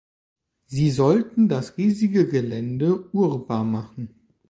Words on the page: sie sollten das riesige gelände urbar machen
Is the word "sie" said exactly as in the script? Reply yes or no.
yes